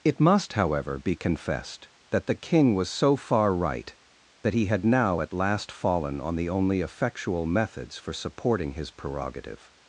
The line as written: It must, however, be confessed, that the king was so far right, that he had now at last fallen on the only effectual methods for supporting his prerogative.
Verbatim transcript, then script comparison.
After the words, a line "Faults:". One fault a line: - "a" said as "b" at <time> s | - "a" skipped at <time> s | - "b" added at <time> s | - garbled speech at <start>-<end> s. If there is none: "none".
It must, however, be confessed, that the king was so far right, that he had now at last fallen on the only effectual methods for supporting his prerogative.
Faults:
none